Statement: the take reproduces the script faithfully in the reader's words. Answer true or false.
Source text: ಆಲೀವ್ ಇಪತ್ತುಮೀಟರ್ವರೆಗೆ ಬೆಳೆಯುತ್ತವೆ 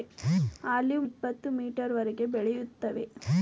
true